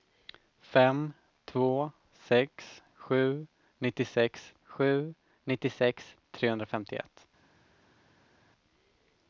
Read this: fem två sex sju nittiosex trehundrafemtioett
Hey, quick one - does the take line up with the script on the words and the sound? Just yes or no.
no